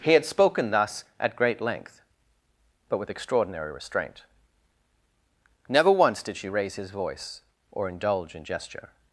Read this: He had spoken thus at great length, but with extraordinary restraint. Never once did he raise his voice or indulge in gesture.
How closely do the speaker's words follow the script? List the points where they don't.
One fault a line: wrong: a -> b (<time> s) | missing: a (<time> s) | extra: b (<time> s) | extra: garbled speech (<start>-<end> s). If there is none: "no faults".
wrong: he -> she (6.4 s)